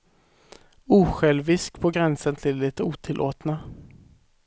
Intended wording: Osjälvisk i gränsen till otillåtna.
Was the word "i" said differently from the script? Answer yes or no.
yes